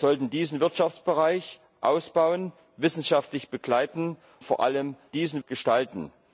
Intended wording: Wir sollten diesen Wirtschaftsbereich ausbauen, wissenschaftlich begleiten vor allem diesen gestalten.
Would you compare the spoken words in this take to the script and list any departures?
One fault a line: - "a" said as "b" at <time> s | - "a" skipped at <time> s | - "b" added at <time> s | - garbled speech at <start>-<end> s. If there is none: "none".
none